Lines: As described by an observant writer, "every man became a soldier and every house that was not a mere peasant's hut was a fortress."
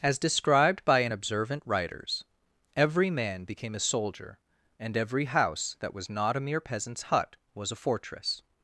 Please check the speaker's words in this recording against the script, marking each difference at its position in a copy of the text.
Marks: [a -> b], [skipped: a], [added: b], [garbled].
As described by an observant [writer, -> writers] "every man became a soldier and every house that was not a mere peasant's hut was a fortress."